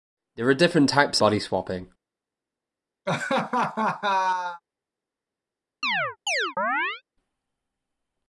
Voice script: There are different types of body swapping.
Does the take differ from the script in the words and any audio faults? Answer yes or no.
yes